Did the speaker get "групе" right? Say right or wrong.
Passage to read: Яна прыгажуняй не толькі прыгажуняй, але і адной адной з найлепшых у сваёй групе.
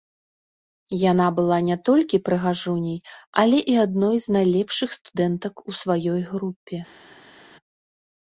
right